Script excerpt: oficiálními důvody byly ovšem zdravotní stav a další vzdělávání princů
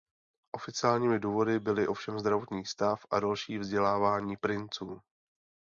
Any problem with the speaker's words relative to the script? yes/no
no